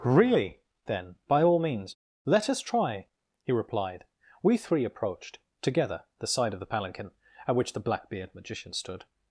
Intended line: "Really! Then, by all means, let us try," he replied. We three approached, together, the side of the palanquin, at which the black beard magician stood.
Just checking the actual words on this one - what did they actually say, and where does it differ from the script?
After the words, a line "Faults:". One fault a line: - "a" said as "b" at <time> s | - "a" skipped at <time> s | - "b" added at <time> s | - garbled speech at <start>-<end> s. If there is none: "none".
"Really! Then, by all means, let us try," he replied. We three approached, together, the side of the palanquin, at which the black beard magician stood.
Faults:
none